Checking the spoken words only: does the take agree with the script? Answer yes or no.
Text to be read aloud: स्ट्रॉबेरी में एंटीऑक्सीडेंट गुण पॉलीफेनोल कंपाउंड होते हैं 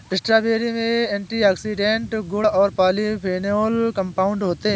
no